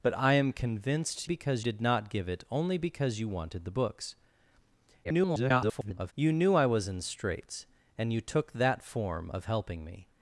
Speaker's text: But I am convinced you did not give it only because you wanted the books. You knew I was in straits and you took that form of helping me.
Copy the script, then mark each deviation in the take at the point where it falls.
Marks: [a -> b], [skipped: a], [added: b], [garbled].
But I am convinced [you -> because] did not give it only because you wanted the books. [garbled] You knew I was in straits and you took that form of helping me.